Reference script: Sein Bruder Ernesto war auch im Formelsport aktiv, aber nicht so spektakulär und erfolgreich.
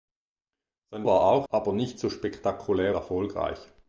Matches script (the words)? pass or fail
fail